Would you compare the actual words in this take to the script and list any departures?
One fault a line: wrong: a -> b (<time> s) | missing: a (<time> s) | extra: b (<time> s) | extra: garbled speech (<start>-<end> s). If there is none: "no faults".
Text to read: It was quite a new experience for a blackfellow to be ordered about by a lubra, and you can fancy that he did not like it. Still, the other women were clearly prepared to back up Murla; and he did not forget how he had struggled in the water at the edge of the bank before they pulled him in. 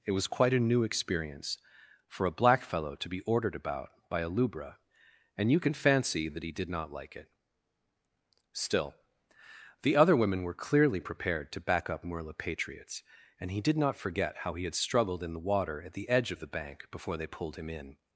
extra: patriots (12.4 s)